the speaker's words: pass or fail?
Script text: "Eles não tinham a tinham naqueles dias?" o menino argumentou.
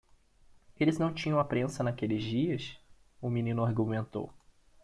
fail